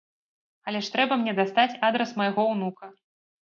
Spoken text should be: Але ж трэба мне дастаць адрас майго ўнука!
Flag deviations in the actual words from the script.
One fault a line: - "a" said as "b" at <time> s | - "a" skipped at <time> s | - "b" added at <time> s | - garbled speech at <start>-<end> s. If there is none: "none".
none